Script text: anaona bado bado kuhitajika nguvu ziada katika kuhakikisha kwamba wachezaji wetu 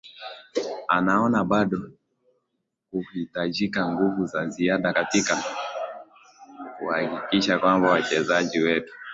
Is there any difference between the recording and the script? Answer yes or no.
yes